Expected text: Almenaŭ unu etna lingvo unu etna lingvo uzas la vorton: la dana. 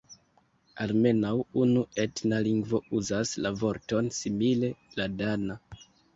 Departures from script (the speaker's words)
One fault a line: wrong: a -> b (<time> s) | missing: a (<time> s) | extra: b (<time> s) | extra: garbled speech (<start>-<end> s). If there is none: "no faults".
missing: unu etna lingvo (2.8 s)
extra: simile (4.2 s)